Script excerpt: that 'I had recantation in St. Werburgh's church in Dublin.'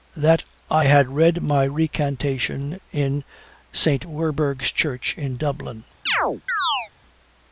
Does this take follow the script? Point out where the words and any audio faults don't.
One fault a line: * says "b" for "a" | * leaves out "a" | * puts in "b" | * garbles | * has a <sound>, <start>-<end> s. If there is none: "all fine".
* puts in "read my"
* has a chirp, 6.1-6.9 s